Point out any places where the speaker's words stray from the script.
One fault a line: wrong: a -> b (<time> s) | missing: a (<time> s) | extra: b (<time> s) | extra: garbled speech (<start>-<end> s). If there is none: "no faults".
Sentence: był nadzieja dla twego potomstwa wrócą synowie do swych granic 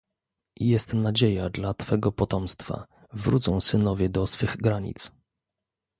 wrong: był -> jest (0.6 s)